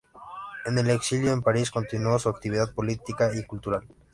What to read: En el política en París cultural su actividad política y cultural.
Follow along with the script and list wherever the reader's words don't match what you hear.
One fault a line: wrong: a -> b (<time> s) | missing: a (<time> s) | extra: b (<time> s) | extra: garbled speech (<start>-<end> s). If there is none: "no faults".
wrong: política -> exilio (0.9 s)
wrong: cultural -> continuó (1.7 s)